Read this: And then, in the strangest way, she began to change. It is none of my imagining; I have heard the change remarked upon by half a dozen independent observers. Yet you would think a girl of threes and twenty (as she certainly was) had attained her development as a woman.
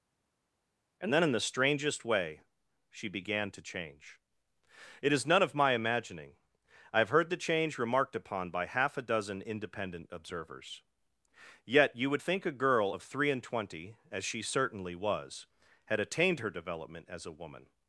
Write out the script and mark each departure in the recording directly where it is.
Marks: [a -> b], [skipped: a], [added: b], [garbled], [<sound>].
And then, in the strangest way, she began to change. It is none of my imagining; I have heard the change remarked upon by half a dozen independent observers. Yet you would think a girl of [threes -> three] and twenty (as she certainly was) had attained her development as a woman.